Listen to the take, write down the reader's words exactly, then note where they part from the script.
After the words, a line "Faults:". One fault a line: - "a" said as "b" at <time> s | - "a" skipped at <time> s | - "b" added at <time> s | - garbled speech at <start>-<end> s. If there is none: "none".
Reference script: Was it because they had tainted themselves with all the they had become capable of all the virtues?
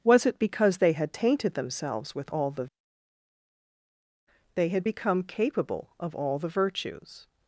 Was it because they had tainted themselves with all the they had become capable of all the virtues?
Faults:
none